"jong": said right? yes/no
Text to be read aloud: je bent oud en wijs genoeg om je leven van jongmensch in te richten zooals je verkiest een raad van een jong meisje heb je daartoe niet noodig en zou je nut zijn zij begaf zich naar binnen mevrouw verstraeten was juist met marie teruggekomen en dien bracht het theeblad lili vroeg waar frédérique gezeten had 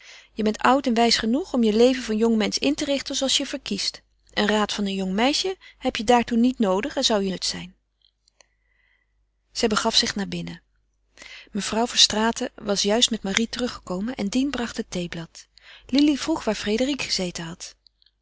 yes